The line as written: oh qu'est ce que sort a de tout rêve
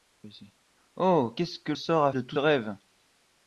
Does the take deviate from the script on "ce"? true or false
false